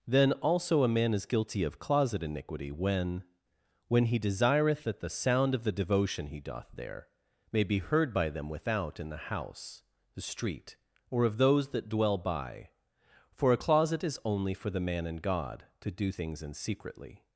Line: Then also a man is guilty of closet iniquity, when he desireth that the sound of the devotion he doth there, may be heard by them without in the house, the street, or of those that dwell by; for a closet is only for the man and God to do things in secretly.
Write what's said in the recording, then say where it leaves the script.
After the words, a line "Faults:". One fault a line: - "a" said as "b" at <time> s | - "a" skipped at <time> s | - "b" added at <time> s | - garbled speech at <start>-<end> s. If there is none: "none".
Then also a man is guilty of closet iniquity, when when he desireth that the sound of the devotion he doth there, may be heard by them without in the house, the street, or of those that dwell by; for a closet is only for the man and God to do things in secretly.
Faults:
- "when" added at 3.9 s